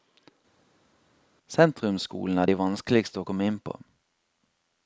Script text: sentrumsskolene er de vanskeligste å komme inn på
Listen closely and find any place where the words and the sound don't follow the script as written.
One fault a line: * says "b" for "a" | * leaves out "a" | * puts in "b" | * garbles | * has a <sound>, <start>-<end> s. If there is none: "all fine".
all fine